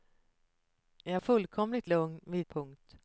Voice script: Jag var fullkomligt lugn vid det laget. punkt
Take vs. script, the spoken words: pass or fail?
fail